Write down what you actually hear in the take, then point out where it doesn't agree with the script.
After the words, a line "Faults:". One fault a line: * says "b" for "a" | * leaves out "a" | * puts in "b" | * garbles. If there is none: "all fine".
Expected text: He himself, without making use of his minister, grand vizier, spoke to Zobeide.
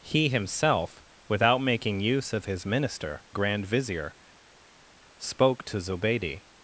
He himself, without making use of his minister, grand vizier, spoke to Zobeide.
Faults:
all fine